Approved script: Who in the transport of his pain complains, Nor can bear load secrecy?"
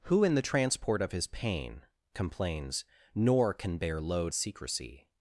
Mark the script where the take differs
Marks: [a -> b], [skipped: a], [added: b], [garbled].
Who in the transport of his pain complains, Nor can bear load secrecy?"